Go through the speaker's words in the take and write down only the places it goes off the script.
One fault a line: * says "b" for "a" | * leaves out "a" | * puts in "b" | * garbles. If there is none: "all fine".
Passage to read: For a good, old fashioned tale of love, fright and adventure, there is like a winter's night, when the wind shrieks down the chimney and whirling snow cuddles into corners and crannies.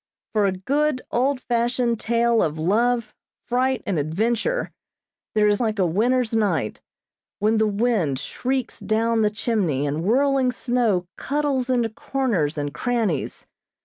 all fine